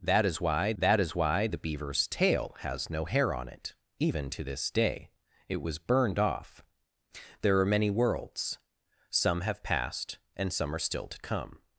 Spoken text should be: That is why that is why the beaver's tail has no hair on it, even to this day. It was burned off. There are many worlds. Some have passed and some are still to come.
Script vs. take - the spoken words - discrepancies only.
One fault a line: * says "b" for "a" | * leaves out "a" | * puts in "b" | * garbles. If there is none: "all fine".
all fine